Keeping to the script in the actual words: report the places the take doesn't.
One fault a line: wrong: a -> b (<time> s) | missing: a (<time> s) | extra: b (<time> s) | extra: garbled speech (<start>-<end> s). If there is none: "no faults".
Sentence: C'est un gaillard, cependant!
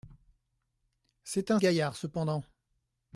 no faults